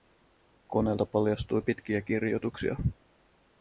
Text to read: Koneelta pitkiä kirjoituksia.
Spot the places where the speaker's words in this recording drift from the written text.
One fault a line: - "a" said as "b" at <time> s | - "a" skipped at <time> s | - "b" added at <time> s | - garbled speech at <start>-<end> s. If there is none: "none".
- "paljastui" added at 1.1 s